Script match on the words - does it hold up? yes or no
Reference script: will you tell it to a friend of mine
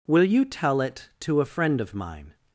yes